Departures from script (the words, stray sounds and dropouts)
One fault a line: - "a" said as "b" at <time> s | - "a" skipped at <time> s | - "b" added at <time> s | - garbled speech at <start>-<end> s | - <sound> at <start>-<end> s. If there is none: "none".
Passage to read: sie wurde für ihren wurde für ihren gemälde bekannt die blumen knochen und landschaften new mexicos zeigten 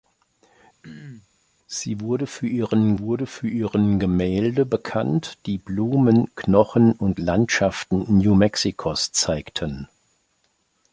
- throat clearing at 0.8-1.3 s